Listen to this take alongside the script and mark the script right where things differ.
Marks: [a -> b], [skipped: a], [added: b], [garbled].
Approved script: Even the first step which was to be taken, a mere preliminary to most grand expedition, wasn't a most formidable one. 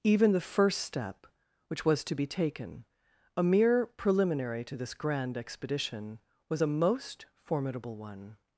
Even the first step which was to be taken, a mere preliminary to [most -> this] grand expedition, [wasn't -> was] a most formidable one.